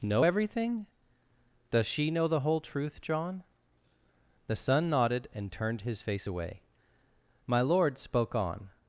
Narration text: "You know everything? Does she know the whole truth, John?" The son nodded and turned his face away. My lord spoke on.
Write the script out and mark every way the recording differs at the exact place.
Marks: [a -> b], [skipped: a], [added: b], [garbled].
[skipped: "You] know everything? Does she know the whole truth, John?" The son nodded and turned his face away. My lord spoke on.